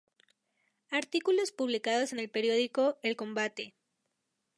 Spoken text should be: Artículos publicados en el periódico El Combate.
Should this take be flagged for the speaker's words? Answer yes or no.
no